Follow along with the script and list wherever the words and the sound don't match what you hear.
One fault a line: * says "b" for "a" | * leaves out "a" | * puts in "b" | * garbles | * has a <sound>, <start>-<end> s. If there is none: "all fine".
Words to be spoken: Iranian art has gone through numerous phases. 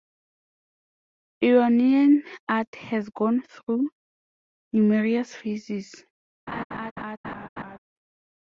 * has a laugh, 6.5-7.8 s